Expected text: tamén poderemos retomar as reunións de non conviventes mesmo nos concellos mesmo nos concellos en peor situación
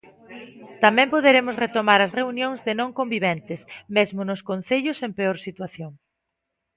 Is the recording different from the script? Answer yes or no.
yes